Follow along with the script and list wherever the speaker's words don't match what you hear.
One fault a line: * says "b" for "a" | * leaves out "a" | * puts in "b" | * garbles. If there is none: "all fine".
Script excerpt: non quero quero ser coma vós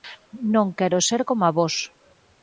* leaves out "quero"